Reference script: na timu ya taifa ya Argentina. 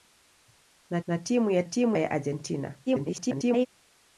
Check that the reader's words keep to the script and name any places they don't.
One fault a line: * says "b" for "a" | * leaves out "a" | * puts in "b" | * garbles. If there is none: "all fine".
* puts in "na"
* says "timu" for "taifa"
* garbles